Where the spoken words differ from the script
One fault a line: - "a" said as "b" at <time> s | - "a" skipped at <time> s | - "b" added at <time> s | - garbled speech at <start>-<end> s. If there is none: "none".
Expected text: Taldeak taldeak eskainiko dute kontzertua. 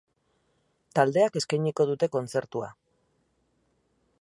- "taldeak" skipped at 1.4 s